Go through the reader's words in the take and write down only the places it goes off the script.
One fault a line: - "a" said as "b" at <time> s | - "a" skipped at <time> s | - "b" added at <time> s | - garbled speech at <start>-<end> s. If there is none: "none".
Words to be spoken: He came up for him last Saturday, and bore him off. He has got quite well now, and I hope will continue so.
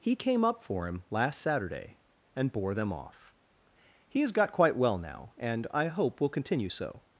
- "him" said as "them" at 2.8 s